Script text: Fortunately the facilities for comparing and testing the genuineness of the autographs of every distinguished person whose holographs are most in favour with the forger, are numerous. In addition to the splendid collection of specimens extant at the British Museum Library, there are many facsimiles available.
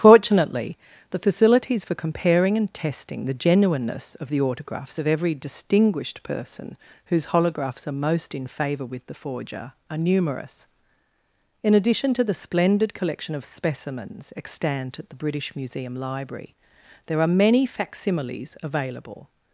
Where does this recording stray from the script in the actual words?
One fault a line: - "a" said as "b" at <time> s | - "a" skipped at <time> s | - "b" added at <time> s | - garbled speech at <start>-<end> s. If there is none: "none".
none